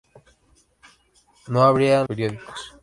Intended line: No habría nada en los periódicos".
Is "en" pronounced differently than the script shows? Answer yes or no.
yes